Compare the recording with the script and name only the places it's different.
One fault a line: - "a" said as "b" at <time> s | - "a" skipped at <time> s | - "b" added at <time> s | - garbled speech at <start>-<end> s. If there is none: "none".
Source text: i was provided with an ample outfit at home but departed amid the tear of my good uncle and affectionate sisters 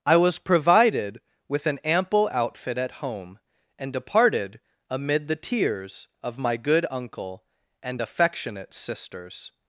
- "but" said as "and" at 3.8 s
- "tear" said as "tears" at 5.3 s